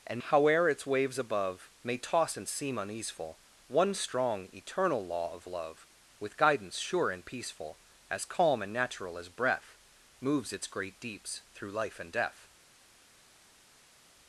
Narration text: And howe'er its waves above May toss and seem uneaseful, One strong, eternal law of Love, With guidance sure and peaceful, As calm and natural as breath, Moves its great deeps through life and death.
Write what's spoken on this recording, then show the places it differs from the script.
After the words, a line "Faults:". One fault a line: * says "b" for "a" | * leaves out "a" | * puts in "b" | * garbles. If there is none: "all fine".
And howe'er its waves above May toss and seem uneaseful, One strong, eternal law of Love, With guidance sure and peaceful, As calm and natural as breath, Moves its great deeps through life and death.
Faults:
all fine